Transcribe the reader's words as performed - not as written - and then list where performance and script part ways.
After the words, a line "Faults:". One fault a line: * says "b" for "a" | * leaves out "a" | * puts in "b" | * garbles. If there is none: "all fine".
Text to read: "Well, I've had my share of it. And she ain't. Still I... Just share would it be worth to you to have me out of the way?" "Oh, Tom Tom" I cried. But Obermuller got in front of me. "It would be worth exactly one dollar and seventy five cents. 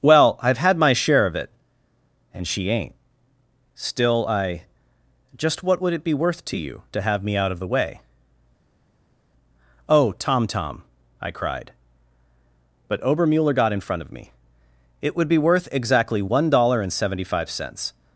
"Well, I've had my share of it. And she ain't. Still I... Just what would it be worth to you to have me out of the way?" "Oh, Tom Tom" I cried. But Obermuller got in front of me. "It would be worth exactly one dollar and seventy five cents.
Faults:
* says "what" for "share"